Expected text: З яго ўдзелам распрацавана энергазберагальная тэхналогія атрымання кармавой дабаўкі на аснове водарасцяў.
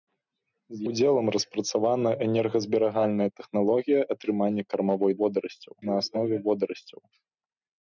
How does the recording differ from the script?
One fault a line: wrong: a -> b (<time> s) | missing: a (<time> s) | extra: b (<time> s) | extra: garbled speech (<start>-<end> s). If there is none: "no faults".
missing: яго (0.8 s)
wrong: дабаўкі -> водарасцяў (5.2 s)